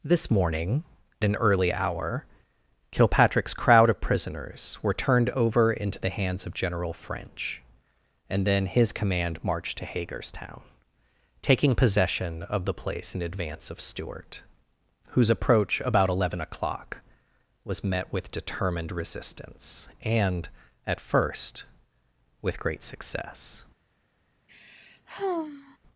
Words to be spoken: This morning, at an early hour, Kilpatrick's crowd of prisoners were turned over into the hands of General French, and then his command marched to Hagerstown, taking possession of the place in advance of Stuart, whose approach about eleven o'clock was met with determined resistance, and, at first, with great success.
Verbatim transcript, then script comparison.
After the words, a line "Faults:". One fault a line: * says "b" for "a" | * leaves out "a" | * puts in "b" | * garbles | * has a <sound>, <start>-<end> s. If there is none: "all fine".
This morning, an early hour, Kilpatrick's crowd of prisoners were turned over into the hands of General French, and then his command marched to Hagerstown, taking possession of the place in advance of Stuart, whose approach about eleven o'clock was met with determined resistance, and, at first, with great success.
Faults:
* leaves out "at"
* has a sigh, 24.5-25.8 s